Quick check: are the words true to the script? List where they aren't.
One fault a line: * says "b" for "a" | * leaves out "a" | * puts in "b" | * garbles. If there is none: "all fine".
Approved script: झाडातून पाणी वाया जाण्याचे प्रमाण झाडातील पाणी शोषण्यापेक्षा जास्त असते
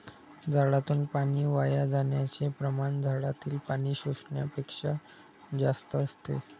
all fine